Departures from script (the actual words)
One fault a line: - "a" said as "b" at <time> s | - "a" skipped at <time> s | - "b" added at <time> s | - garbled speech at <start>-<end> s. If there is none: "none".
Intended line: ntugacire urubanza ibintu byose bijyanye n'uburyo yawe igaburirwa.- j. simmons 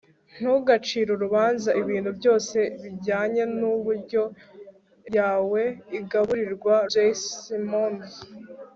none